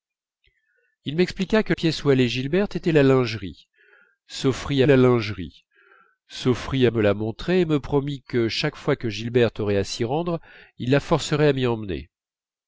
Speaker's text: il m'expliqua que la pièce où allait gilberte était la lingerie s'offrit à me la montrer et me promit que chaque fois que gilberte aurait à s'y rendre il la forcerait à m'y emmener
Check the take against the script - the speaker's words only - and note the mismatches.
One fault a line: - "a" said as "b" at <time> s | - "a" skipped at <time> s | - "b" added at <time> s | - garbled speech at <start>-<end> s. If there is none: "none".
- "la" skipped at 1.8 s
- "la lingerie s'offrit" added at 4.8 s